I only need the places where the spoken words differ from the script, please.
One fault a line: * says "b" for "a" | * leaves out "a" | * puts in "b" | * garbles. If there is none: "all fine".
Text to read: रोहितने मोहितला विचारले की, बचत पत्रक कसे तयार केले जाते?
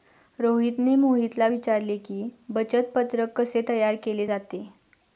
all fine